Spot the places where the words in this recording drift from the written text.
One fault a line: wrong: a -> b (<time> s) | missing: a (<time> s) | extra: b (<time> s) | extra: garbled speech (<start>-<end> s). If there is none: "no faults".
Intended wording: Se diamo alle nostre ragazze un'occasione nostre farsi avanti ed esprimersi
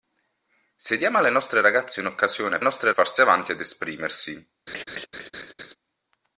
no faults